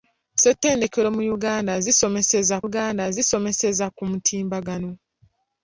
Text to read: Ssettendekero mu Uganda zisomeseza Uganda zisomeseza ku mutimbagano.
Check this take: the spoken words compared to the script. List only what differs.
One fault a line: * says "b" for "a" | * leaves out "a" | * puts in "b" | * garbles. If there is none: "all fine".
all fine